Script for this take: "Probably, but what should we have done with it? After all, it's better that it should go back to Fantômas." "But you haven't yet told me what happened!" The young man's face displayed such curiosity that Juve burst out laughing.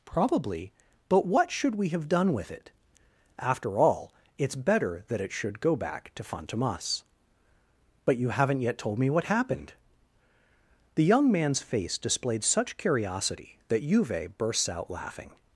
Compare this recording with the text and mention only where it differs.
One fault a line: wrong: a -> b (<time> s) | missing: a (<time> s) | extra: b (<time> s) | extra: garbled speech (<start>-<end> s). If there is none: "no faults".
wrong: burst -> bursts (14.4 s)